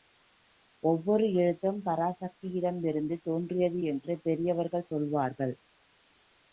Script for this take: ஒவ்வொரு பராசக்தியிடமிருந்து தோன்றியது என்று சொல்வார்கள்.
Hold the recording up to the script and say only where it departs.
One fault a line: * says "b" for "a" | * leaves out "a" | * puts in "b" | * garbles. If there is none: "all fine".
* puts in "எழுத்தும்"
* puts in "பெரியவர்கள்"